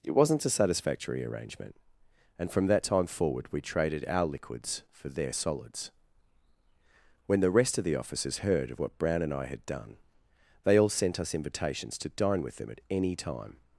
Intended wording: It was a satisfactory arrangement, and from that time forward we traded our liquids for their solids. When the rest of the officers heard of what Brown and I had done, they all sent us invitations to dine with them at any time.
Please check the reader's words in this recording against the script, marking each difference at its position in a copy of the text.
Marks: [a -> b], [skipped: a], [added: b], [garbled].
It [was -> wasn't] a satisfactory arrangement, and from that time forward we traded our liquids for their solids. When the rest of the officers heard of what Brown and I had done, they all sent us invitations to dine with them at any time.